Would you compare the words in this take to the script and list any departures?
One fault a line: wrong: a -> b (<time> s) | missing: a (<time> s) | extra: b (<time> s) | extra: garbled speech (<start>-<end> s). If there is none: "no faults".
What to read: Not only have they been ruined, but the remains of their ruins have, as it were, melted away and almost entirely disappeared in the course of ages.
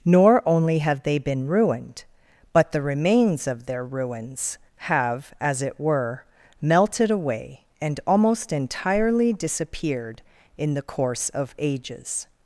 wrong: Not -> Nor (0.0 s)